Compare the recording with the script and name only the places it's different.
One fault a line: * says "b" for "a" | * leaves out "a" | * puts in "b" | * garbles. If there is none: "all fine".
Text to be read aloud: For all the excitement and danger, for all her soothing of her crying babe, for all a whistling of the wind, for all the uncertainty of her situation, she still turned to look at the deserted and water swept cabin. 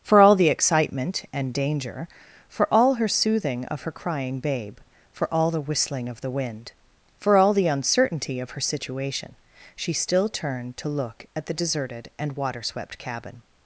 * says "the" for "a"